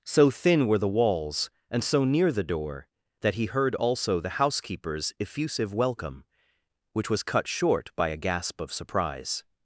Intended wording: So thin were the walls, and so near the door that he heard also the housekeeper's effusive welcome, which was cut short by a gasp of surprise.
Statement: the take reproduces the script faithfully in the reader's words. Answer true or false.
true